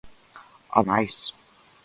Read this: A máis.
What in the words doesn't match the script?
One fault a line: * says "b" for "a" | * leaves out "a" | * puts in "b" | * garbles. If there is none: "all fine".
all fine